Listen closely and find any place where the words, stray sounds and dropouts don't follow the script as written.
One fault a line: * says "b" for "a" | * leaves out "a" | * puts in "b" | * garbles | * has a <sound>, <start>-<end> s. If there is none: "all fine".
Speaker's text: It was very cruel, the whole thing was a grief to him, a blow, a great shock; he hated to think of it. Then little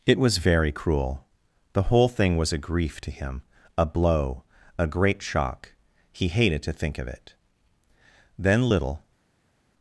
all fine